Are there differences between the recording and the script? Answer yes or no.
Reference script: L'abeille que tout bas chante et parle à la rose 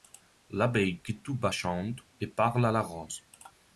yes